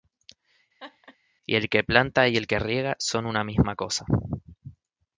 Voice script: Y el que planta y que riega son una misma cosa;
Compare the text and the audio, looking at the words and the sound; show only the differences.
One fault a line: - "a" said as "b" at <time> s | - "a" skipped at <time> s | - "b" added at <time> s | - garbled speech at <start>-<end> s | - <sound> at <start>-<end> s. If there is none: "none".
- laugh at 0.8-1.2 s
- "el" added at 2.4 s